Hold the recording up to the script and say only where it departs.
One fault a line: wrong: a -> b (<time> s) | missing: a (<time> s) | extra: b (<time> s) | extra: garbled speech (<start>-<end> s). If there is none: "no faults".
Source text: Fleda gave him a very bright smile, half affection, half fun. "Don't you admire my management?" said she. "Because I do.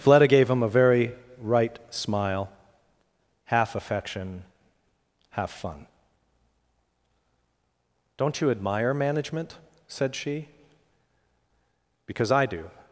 wrong: bright -> right (1.4 s)
missing: my (8.9 s)